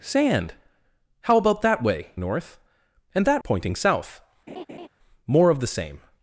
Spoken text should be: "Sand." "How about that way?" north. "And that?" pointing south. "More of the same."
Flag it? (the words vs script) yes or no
no